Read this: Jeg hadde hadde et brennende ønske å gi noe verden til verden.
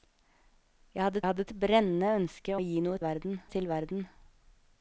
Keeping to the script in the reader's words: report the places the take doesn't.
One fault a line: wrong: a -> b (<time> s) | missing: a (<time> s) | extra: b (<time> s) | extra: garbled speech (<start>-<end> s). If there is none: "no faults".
no faults